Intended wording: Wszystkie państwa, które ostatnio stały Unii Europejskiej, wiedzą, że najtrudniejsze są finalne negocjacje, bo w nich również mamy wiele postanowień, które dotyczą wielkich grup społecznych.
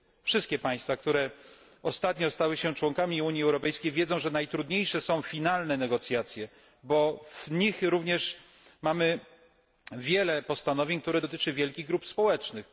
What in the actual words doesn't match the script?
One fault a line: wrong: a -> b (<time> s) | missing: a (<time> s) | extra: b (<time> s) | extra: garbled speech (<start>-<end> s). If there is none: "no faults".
extra: się członkami (2.6 s)